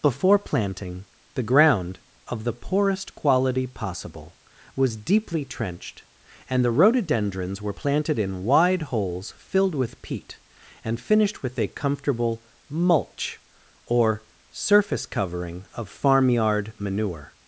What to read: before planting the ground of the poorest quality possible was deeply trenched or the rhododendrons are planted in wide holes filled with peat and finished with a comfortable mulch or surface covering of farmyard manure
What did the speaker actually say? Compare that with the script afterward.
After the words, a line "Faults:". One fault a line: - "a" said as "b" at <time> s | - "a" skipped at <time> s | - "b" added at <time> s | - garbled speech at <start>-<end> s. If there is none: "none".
before planting the ground of the poorest quality possible was deeply trenched and the rhododendrons were planted in wide holes filled with peat and finished with a comfortable mulch or surface covering of farmyard manure
Faults:
- "or" said as "and" at 6.5 s
- "are" said as "were" at 7.6 s